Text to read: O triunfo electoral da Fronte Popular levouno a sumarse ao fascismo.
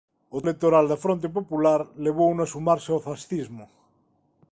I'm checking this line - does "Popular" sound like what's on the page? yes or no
yes